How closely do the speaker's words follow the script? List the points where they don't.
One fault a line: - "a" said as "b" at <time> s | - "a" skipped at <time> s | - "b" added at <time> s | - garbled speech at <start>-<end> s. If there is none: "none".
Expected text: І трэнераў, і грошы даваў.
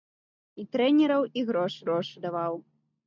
- "грошы" added at 1.9 s